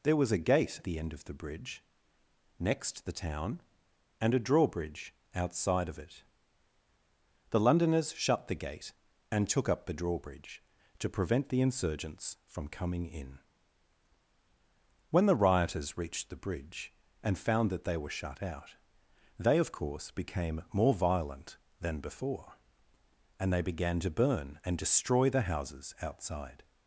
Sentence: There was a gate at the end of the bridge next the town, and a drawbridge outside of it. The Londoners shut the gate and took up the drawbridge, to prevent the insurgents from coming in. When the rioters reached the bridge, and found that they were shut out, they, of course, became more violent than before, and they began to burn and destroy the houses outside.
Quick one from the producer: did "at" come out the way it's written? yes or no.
no